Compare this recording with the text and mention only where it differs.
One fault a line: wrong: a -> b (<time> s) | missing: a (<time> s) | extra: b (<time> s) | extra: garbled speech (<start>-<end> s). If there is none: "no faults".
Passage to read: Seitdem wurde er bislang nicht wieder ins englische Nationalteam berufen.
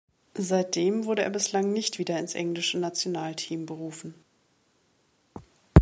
no faults